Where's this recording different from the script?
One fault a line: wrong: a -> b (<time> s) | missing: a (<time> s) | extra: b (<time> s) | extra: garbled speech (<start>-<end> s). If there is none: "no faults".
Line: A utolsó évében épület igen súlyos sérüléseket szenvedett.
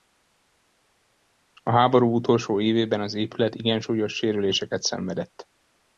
extra: háború (1.7 s)
extra: az (3.0 s)